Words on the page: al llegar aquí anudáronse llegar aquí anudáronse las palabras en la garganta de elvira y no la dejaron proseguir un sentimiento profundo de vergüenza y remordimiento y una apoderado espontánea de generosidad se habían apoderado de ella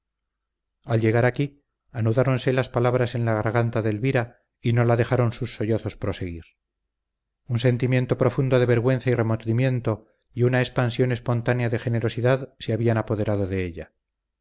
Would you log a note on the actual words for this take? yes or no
yes